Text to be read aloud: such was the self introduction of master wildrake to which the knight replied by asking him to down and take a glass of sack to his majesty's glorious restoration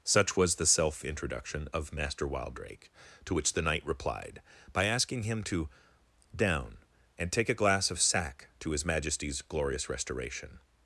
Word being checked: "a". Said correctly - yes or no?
yes